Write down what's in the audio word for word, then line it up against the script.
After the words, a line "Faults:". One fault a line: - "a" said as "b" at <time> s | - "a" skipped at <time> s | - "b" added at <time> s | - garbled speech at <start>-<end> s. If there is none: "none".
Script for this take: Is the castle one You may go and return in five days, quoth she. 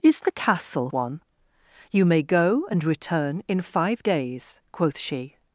Is the castle one You may go and return in five days, quoth she.
Faults:
none